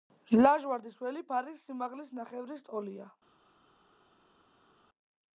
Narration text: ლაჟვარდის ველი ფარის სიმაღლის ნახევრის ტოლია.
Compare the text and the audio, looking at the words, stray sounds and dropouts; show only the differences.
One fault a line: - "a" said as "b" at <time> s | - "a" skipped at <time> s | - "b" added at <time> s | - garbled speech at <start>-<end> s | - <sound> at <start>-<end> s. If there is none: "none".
none